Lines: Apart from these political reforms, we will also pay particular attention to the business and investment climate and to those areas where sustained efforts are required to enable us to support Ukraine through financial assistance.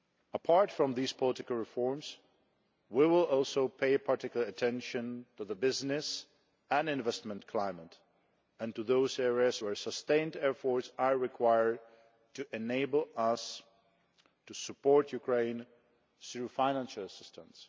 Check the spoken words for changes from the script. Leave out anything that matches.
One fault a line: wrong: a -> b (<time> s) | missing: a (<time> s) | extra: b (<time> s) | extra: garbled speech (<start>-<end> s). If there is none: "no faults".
no faults